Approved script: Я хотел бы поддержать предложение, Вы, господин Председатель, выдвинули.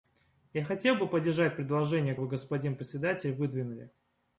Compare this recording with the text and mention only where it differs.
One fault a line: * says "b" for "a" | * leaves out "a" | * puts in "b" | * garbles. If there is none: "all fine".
all fine